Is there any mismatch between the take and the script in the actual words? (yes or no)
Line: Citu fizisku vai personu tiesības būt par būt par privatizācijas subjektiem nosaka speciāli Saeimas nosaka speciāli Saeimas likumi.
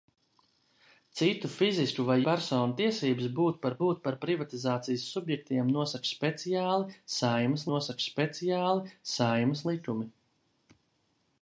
no